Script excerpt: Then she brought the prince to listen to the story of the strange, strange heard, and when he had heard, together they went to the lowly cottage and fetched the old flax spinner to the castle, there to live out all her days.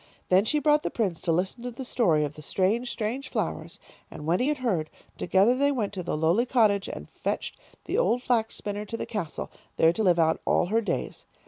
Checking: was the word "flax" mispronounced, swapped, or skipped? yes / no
no